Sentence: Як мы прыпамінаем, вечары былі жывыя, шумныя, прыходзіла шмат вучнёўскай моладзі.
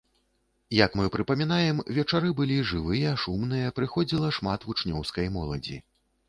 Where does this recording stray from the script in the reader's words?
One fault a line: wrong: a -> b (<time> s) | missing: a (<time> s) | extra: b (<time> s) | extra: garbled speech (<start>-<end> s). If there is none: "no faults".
no faults